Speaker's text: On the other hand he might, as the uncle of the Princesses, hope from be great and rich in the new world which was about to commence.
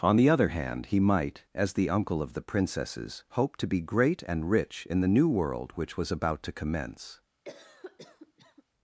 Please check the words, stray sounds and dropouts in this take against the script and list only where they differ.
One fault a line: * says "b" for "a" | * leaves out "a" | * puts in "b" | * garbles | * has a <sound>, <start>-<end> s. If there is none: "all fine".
* says "to" for "from"
* has a cough, 7.4-8.6 s